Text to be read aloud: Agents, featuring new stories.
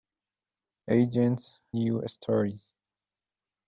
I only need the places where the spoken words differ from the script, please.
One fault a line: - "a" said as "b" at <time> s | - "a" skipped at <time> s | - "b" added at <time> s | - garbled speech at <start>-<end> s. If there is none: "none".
- "featuring" skipped at 1.6 s